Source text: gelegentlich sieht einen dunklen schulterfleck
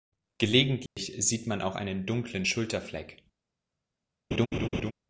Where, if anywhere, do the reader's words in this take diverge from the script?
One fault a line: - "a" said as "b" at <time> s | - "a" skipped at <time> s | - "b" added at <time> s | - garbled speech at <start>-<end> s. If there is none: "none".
- "man auch" added at 1.4 s